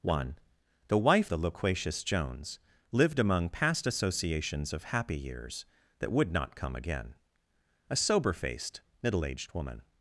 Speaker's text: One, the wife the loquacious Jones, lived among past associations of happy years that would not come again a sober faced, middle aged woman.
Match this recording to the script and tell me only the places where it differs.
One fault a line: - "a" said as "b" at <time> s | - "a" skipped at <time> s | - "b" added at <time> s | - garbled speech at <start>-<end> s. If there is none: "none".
none